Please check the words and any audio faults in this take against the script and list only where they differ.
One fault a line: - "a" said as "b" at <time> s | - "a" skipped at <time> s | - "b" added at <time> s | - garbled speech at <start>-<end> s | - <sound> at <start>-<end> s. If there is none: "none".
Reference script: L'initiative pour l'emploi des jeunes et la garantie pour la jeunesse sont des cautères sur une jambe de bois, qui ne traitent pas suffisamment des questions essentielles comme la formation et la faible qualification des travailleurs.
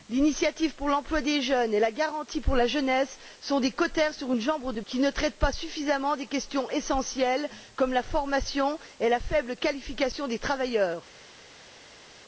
- "bois" skipped at 4.8 s